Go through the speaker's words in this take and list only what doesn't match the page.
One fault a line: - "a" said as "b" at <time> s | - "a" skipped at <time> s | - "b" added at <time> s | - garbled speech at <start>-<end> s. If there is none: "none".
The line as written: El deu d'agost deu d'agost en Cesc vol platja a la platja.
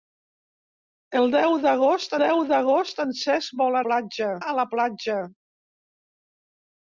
none